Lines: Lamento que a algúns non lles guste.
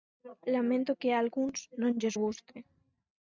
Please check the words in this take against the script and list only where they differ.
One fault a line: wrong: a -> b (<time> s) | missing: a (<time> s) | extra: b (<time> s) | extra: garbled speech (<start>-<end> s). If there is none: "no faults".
no faults